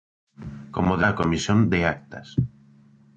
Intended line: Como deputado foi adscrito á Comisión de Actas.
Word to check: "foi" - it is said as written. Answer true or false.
false